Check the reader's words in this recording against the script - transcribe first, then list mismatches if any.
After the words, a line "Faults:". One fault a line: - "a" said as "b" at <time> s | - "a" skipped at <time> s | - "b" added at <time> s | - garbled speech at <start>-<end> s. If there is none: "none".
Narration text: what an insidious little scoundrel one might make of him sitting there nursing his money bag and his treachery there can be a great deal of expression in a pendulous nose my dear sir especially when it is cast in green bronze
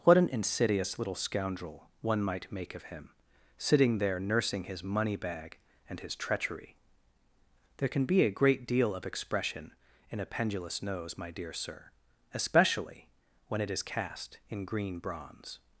what an insidious little scoundrel one might make of him sitting there nursing his money bag and his treachery there can be a great deal of expression in a pendulous nose my dear sir especially when it is cast in green bronze
Faults:
none